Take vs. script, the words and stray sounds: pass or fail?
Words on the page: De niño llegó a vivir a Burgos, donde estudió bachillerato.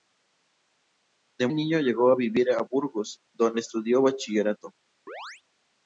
fail